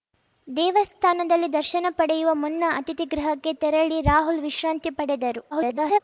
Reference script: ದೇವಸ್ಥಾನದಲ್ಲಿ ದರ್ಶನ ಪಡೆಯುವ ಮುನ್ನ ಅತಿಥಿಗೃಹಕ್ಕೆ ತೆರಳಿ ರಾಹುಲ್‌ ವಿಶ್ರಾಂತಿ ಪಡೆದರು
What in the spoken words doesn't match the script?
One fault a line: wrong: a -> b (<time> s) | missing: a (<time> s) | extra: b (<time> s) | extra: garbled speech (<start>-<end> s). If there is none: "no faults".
extra: garbled speech (5.5-6.0 s)